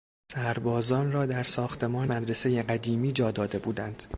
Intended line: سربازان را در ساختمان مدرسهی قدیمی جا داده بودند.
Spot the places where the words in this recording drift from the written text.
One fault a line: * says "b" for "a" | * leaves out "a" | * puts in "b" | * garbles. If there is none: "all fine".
all fine